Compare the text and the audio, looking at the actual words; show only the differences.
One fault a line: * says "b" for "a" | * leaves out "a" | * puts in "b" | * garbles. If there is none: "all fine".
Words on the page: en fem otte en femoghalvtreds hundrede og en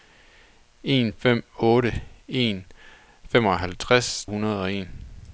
all fine